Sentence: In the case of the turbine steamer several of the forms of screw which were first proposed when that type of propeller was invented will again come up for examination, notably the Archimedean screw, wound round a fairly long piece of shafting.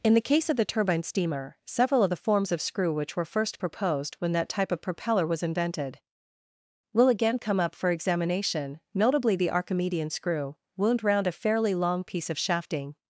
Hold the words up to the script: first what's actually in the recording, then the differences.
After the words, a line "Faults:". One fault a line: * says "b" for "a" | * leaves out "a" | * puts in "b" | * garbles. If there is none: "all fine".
In the case of the turbine steamer several of the forms of screw which were first proposed when that type of propeller was invented will again come up for examination, notably the Archimedean screw, wound round a fairly long piece of shafting.
Faults:
all fine